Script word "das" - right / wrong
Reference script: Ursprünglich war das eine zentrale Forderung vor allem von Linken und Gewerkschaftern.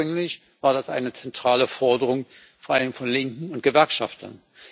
right